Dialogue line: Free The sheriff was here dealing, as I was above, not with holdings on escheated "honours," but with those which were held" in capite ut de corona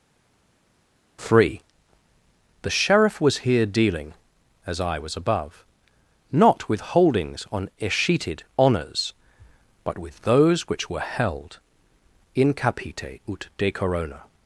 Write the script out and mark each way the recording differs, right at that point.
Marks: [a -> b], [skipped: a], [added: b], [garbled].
Free The sheriff was here dealing, as I was above, not with holdings on escheated "honours," but with those which were held" in capite ut de corona